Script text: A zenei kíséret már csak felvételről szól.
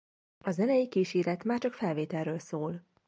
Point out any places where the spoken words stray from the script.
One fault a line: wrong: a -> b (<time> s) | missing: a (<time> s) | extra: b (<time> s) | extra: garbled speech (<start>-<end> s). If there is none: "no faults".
no faults